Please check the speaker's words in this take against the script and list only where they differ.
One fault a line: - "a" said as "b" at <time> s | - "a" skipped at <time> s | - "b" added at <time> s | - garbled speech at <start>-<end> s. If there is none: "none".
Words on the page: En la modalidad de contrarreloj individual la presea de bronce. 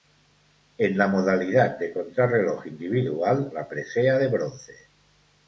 none